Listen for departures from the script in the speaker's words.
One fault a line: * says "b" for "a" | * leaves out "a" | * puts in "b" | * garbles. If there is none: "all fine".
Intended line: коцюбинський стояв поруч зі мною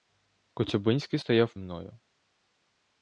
* leaves out "поруч зі"